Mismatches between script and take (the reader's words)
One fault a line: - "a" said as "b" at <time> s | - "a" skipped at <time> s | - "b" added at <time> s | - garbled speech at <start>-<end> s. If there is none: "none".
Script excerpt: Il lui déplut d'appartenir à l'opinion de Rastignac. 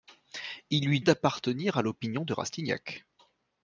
- "déplut" skipped at 1.0 s